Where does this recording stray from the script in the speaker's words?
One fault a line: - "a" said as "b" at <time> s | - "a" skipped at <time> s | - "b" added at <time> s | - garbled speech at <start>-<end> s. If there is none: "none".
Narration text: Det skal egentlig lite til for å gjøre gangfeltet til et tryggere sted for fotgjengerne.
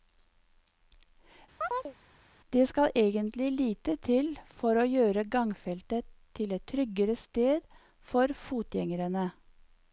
none